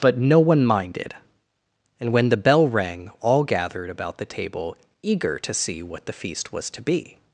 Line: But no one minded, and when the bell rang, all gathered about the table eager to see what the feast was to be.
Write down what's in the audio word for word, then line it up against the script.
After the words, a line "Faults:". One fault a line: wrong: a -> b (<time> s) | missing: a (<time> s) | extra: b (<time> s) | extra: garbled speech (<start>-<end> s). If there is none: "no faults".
But no one minded, and when the bell rang, all gathered about the table eager to see what the feast was to be.
Faults:
no faults